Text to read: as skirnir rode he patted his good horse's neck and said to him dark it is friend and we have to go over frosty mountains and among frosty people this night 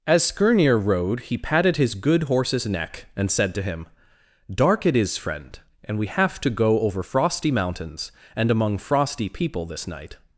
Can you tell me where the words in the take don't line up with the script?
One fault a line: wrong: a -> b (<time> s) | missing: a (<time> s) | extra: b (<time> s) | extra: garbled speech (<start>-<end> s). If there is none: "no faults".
no faults